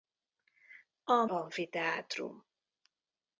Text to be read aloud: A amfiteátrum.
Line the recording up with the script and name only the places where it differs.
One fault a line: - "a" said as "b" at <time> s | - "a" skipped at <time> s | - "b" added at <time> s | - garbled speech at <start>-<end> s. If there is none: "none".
none